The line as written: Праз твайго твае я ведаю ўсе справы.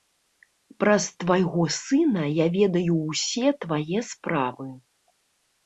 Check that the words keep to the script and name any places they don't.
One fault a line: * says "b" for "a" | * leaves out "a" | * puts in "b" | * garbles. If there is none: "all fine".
* says "сына" for "твае"
* puts in "твае"